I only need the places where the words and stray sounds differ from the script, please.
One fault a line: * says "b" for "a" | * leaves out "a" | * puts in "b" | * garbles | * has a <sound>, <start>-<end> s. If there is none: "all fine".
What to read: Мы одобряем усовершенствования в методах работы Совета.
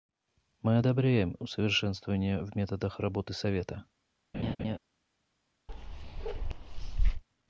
* has a laugh, 4.3-4.8 s
* has a bark, 5.7-7.2 s